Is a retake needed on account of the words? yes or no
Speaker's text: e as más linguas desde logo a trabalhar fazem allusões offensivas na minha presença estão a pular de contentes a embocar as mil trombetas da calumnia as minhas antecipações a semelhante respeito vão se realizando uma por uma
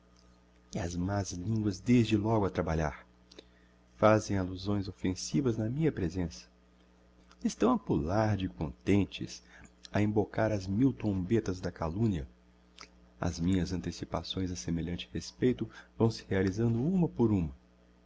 no